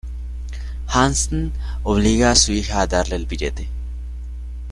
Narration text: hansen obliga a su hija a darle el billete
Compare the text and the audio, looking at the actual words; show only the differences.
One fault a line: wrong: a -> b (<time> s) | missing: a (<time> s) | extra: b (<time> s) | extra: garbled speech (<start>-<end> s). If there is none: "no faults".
no faults